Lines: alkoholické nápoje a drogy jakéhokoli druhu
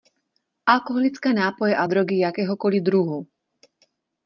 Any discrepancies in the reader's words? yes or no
no